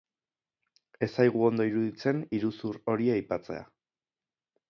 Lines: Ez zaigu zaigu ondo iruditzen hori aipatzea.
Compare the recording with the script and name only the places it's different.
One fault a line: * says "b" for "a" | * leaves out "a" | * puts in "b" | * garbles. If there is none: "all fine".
* leaves out "zaigu"
* puts in "iruzur"